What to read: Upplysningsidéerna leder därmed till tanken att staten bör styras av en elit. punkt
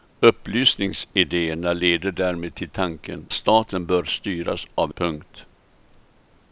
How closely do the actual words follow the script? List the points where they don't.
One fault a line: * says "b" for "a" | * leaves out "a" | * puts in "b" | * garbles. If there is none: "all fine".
* leaves out "att"
* leaves out "en elit"